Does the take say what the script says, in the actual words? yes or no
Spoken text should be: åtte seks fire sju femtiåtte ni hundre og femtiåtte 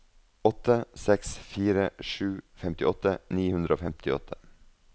yes